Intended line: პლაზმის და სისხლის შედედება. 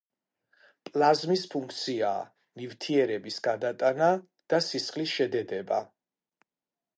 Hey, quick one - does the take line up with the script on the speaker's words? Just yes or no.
no